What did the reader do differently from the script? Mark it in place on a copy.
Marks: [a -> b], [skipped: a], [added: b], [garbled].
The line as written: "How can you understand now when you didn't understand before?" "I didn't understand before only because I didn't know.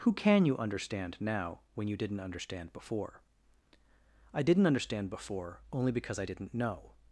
["How -> Who] can you understand now when you didn't understand before?" "I didn't understand before only because I didn't know.